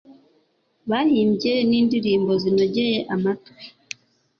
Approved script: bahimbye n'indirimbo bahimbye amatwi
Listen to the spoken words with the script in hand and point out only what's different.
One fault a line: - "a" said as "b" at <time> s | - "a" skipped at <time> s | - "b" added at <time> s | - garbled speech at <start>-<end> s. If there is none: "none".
- "bahimbye" said as "zinogeye" at 2.4 s